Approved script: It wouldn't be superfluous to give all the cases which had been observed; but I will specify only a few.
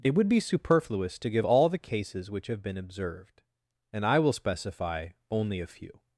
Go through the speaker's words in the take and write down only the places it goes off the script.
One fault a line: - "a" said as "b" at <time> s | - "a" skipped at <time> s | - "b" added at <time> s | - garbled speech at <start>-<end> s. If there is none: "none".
- "wouldn't" said as "would" at 0.1 s
- "had" said as "have" at 2.5 s
- "but" said as "and" at 3.9 s